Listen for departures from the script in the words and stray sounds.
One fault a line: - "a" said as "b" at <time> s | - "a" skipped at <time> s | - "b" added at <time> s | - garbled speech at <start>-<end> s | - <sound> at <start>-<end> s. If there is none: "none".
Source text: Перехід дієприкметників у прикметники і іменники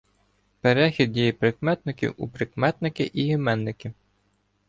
none